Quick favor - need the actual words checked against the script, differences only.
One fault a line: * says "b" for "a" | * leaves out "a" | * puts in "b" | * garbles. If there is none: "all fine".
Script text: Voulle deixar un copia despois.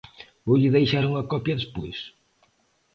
* says "unha" for "un"